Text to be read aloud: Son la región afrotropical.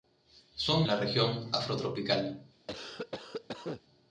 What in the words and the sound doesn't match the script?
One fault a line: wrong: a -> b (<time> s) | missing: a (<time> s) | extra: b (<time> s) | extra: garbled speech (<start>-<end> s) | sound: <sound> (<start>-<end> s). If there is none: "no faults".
sound: cough (2.7-3.8 s)